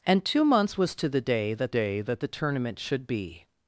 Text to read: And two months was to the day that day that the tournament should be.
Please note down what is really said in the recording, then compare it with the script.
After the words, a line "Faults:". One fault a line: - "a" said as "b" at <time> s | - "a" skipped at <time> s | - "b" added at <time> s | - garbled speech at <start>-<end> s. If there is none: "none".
And two months was to the day that day that the tournament should be.
Faults:
none